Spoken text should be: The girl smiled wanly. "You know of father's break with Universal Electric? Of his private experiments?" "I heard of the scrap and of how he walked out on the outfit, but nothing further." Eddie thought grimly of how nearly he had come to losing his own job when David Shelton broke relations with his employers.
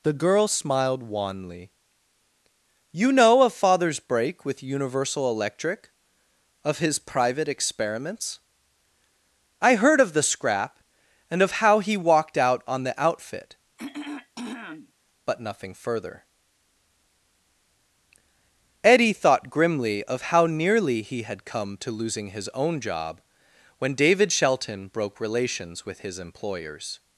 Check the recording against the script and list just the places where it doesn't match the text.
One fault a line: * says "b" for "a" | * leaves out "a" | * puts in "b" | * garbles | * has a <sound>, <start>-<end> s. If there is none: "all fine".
* has a throat clearing, 13.8-14.9 s